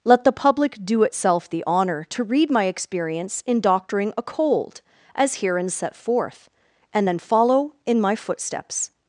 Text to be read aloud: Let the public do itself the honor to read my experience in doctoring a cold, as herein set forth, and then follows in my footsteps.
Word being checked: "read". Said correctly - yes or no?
yes